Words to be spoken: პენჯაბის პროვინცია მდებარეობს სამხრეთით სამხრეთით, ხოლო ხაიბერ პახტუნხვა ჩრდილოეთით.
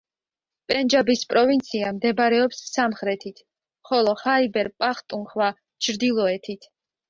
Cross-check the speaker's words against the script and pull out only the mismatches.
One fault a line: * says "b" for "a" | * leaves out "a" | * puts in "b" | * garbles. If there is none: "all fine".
* leaves out "სამხრეთით"